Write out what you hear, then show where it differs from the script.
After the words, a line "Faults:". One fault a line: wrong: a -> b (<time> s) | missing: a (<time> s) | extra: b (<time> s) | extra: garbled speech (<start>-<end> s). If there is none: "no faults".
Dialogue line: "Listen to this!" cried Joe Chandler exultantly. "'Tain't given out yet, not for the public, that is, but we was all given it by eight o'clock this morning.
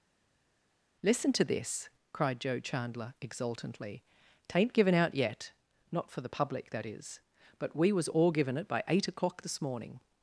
"Listen to this!" cried Joe Chandler exultantly. "'Tain't given out yet, not for the public, that is, but we was all given it by eight o'clock this morning.
Faults:
no faults